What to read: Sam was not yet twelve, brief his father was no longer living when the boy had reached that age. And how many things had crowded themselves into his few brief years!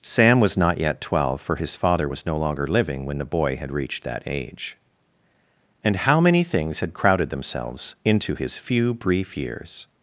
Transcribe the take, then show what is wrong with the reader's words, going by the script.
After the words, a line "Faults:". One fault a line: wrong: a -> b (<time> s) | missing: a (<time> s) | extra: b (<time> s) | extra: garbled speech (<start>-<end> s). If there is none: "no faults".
Sam was not yet twelve, for his father was no longer living when the boy had reached that age. And how many things had crowded themselves into his few brief years!
Faults:
wrong: brief -> for (1.4 s)